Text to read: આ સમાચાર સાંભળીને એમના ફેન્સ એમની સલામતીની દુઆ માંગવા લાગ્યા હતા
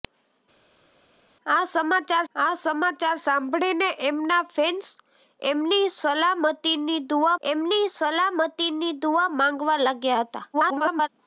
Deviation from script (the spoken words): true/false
true